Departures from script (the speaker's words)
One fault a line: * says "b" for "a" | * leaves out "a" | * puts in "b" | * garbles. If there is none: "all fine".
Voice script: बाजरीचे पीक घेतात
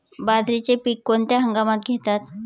* puts in "कोणत्या हंगामात"